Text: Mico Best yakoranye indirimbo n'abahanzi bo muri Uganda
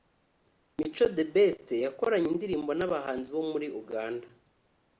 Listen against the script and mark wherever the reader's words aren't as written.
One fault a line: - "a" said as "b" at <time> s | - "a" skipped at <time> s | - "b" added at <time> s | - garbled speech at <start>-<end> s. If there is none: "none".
- "The" added at 1.1 s